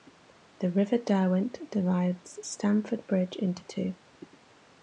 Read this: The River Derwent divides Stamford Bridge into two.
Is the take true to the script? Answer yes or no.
yes